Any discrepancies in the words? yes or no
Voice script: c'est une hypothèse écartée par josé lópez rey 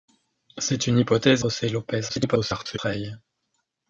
yes